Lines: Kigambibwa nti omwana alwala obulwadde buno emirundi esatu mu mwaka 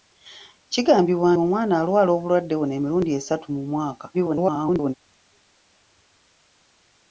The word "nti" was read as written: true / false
false